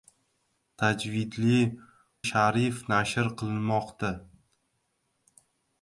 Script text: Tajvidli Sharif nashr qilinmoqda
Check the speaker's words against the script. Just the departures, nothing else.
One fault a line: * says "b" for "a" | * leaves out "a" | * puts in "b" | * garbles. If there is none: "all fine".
all fine